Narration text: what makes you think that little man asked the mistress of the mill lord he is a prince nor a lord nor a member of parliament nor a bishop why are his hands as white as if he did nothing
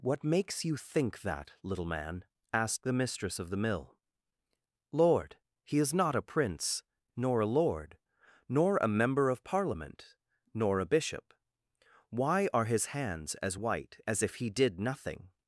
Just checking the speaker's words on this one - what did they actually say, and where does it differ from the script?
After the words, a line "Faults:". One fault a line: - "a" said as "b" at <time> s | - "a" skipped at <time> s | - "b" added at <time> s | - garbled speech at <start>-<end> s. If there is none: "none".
what makes you think that little man asked the mistress of the mill lord he is not a prince nor a lord nor a member of parliament nor a bishop why are his hands as white as if he did nothing
Faults:
- "not" added at 5.9 s